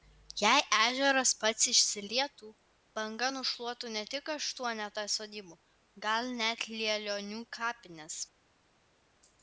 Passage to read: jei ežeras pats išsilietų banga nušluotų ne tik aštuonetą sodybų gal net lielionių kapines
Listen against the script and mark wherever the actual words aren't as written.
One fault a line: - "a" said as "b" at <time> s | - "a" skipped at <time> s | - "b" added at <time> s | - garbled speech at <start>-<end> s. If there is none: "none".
none